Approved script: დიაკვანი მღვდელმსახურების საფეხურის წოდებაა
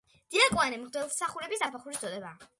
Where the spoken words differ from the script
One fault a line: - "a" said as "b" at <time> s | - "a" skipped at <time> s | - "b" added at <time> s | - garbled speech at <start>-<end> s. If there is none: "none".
none